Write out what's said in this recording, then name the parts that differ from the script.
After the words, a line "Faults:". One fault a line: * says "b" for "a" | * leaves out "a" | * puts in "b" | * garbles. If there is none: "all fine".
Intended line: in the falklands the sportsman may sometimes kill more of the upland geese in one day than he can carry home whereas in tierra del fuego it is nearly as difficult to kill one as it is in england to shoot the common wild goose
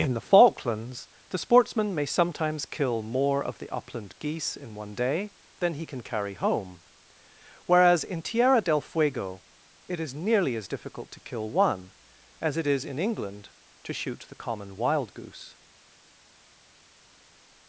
in the falklands the sportsman may sometimes kill more of the upland geese in one day than he can carry home whereas in tierra del fuego it is nearly as difficult to kill one as it is in england to shoot the common wild goose
Faults:
all fine